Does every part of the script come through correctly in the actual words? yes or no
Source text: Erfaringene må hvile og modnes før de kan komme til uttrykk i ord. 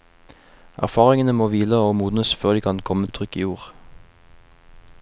no